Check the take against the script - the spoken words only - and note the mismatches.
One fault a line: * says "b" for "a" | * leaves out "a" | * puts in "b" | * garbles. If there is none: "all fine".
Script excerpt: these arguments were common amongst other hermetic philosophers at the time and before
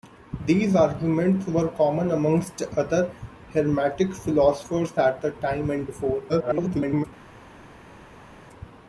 * garbles